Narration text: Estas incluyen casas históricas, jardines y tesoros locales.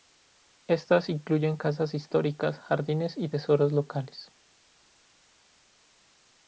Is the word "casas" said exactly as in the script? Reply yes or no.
yes